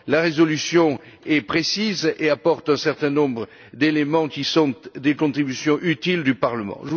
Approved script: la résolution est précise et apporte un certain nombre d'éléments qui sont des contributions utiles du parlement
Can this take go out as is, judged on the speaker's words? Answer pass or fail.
pass